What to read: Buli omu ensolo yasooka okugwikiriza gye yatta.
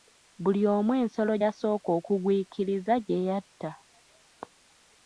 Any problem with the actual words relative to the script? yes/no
no